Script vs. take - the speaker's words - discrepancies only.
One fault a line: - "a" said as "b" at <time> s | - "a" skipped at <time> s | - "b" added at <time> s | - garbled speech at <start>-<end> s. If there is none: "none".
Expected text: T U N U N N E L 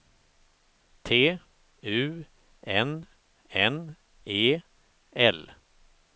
- "U N" skipped at 3.1 s